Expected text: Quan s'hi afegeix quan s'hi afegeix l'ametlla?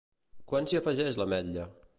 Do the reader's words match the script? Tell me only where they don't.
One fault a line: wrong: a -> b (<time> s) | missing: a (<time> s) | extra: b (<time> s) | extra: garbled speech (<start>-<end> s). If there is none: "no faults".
missing: quan s'hi afegeix (1.2 s)